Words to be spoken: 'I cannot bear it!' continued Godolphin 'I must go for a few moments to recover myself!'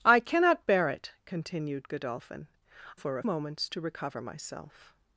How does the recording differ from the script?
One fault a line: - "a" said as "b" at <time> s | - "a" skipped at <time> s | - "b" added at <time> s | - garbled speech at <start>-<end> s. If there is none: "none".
- "I must go" skipped at 2.5 s
- "few" skipped at 3.2 s